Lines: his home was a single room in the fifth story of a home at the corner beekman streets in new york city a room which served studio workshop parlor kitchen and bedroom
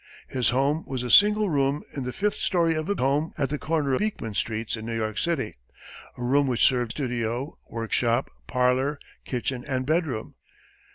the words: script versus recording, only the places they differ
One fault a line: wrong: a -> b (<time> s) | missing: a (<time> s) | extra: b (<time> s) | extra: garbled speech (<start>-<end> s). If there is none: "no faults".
no faults